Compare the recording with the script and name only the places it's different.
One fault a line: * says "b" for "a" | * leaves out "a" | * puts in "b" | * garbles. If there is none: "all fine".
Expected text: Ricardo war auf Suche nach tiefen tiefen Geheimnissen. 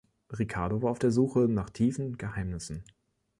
* puts in "der"
* leaves out "tiefen"